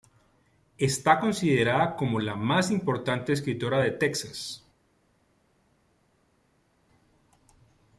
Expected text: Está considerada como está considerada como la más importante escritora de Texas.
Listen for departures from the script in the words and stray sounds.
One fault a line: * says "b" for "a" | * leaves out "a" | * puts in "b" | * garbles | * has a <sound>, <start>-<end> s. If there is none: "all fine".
* leaves out "está considerada como"